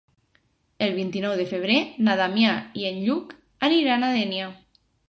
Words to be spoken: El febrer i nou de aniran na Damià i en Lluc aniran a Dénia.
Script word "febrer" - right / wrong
wrong